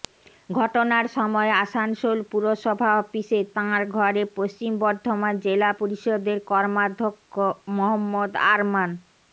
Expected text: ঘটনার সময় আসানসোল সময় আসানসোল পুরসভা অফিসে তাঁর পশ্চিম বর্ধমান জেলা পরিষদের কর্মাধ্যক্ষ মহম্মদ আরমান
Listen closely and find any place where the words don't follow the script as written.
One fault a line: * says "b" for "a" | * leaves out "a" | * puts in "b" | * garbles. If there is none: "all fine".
* leaves out "সময় আসানসোল"
* puts in "ঘরে"